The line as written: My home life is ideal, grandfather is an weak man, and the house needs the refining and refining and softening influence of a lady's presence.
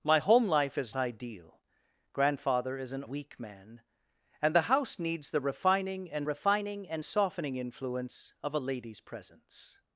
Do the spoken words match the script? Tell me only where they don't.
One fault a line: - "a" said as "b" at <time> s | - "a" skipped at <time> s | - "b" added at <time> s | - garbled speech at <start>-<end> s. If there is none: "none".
none